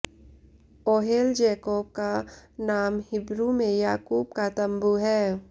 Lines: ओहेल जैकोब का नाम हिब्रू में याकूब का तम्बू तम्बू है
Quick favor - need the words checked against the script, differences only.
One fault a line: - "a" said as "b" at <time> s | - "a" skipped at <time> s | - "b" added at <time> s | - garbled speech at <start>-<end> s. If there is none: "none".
- "तम्बू" skipped at 4.9 s